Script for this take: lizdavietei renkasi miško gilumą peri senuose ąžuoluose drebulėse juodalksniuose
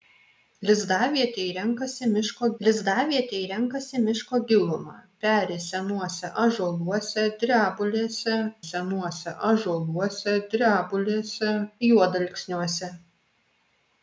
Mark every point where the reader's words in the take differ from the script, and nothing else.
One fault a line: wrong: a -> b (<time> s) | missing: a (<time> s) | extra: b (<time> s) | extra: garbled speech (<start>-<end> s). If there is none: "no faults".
extra: lizdavietei renkasi miško (2.6 s)
extra: senuose ąžuoluose drebulėse (8.6 s)